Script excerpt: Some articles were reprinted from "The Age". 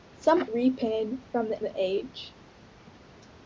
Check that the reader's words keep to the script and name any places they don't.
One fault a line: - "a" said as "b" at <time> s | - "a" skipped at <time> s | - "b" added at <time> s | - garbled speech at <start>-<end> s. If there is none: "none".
- "articles were" skipped at 0.5 s
- "the" added at 1.6 s